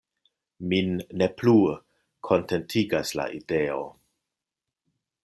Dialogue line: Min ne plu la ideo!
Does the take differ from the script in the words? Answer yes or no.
yes